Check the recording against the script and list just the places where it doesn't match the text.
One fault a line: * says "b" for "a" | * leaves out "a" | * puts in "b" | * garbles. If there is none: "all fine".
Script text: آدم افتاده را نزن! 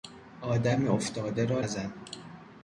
all fine